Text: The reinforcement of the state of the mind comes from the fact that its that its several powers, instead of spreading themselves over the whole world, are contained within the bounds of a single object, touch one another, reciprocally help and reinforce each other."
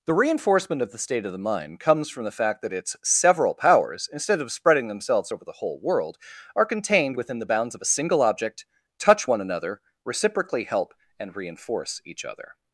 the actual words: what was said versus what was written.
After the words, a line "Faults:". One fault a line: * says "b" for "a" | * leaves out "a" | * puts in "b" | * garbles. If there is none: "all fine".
The reinforcement of the state of the mind comes from the fact that its several powers, instead of spreading themselves over the whole world, are contained within the bounds of a single object, touch one another, reciprocally help and reinforce each other."
Faults:
* leaves out "that its"